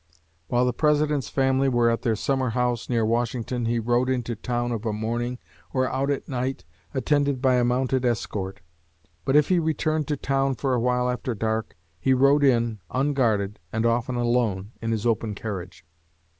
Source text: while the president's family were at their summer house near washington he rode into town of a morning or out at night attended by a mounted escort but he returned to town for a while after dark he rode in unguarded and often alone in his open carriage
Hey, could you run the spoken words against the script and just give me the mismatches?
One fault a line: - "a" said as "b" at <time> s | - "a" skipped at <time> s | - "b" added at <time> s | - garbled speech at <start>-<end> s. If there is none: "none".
- "if" added at 9.3 s